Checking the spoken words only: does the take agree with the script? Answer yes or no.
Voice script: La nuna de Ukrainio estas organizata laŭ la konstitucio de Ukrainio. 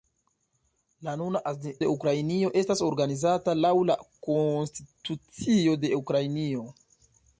yes